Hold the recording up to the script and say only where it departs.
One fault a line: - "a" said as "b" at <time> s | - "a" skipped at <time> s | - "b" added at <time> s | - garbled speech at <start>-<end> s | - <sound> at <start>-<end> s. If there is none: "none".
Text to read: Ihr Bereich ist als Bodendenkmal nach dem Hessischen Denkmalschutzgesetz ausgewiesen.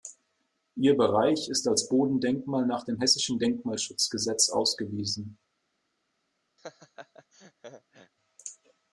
- laugh at 6.6-8.1 s